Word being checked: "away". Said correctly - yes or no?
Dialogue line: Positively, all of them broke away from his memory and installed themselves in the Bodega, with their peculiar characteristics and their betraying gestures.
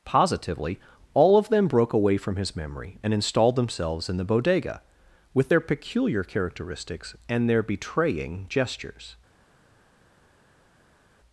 yes